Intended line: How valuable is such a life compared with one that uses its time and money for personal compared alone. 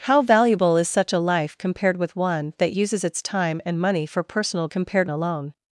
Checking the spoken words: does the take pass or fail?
pass